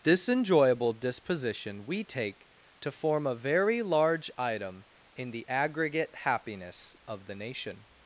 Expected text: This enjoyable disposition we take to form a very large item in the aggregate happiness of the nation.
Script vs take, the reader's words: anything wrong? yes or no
no